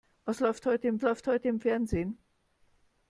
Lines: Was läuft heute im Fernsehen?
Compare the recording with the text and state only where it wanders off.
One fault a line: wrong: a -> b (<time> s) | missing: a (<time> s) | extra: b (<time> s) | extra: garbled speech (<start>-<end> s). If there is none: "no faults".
extra: läuft heute im (1.0 s)